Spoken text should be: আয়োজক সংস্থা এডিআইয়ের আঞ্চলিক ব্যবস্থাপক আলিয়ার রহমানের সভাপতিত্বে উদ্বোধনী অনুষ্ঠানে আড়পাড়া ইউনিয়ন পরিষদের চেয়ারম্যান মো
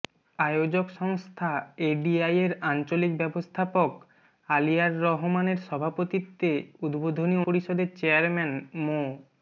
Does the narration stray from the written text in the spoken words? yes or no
yes